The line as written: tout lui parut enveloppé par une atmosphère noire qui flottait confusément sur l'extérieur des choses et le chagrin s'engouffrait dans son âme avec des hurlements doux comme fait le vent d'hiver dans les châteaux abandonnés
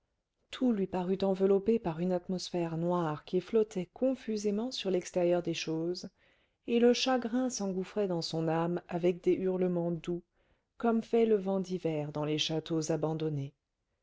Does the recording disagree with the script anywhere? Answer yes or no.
no